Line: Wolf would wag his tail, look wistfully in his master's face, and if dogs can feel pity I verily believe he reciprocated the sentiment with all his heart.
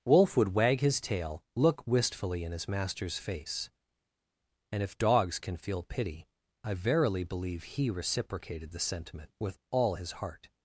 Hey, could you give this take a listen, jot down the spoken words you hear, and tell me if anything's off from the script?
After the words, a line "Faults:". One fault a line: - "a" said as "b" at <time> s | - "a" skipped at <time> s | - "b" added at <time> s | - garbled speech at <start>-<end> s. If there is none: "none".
Wolf would wag his tail, look wistfully in his master's face, and if dogs can feel pity I verily believe he reciprocated the sentiment with all his heart.
Faults:
none